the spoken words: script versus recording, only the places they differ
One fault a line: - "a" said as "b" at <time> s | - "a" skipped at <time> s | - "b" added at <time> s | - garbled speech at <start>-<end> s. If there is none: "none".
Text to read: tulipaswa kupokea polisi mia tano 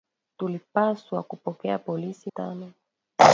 - "mia" skipped at 2.3 s